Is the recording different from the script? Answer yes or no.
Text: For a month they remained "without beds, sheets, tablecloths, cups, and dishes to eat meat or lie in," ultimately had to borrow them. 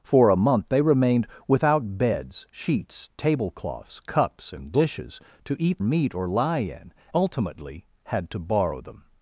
no